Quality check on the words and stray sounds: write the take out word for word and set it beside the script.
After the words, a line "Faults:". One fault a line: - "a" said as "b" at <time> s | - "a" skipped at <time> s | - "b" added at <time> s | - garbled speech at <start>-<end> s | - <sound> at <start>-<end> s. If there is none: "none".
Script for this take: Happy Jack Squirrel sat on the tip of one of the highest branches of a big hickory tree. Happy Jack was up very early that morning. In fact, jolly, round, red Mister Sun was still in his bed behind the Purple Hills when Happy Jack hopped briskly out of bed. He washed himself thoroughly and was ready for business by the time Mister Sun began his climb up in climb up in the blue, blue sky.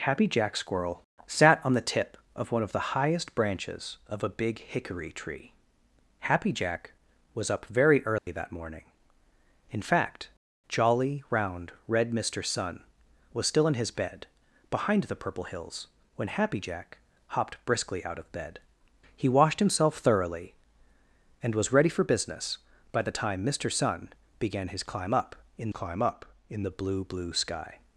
Happy Jack Squirrel sat on the tip of one of the highest branches of a big hickory tree. Happy Jack was up very early that morning. In fact, jolly, round, red Mister Sun was still in his bed behind the Purple Hills when Happy Jack hopped briskly out of bed. He washed himself thoroughly and was ready for business by the time Mister Sun began his climb up in climb up in the blue, blue sky.
Faults:
- dropout at 8.2-8.3 s